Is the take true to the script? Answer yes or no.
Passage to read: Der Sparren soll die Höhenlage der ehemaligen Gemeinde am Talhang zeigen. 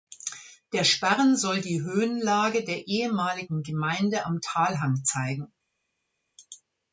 yes